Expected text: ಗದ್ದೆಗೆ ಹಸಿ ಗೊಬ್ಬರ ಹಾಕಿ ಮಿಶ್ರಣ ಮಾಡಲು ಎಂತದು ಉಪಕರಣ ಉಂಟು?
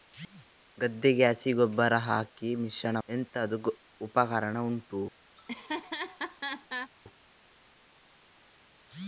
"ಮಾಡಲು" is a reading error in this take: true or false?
true